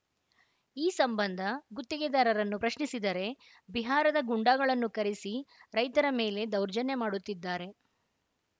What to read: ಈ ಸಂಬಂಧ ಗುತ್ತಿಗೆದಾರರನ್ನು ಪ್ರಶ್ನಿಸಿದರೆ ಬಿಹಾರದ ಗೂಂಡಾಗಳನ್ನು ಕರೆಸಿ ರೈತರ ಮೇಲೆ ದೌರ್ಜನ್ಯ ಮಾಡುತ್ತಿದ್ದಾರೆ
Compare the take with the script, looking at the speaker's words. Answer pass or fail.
pass